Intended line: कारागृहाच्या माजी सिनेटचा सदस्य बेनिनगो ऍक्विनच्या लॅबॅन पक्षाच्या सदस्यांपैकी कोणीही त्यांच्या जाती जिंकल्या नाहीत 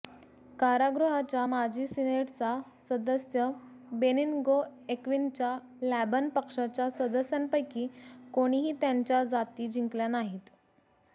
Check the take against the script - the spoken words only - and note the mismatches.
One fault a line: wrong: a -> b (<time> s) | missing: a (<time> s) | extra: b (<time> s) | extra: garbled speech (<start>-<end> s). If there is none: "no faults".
no faults